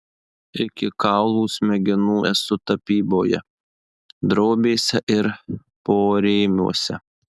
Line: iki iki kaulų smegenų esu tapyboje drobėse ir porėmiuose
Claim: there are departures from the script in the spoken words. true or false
true